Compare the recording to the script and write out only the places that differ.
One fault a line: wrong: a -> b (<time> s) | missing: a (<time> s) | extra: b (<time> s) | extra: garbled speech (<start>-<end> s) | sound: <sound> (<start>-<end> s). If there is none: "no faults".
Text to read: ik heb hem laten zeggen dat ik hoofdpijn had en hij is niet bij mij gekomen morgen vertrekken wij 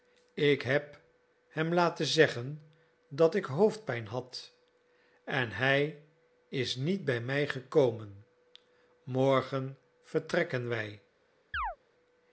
sound: chirp (11.5-11.8 s)